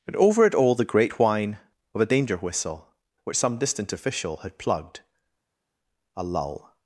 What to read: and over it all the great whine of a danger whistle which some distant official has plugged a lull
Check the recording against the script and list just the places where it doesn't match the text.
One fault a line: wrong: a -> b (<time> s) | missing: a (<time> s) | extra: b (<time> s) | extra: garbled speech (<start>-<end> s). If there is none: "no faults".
wrong: has -> had (4.4 s)